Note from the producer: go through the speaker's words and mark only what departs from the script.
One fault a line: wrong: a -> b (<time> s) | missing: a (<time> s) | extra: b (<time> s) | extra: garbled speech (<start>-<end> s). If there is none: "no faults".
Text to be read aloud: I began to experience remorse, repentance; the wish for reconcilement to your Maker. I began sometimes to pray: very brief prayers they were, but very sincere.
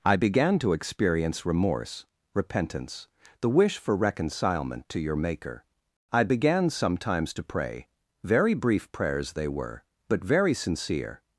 no faults